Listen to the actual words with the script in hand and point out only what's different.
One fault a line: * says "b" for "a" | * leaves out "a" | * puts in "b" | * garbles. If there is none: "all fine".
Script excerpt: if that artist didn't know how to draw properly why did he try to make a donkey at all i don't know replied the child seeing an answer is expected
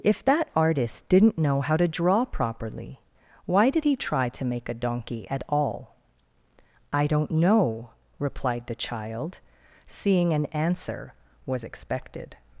* says "was" for "is"